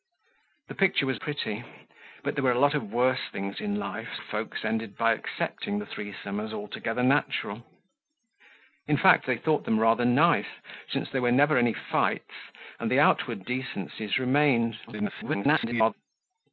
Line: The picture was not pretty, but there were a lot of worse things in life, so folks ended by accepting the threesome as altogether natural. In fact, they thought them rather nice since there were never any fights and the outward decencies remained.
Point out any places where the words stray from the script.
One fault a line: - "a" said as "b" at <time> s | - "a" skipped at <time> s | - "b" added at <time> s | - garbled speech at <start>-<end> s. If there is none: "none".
- "not" skipped at 1.2 s
- "so" skipped at 4.1 s
- garbled speech at 14.9-15.9 s